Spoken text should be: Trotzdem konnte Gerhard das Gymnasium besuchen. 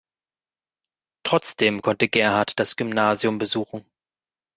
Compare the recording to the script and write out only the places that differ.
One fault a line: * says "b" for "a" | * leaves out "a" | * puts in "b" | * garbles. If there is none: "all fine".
all fine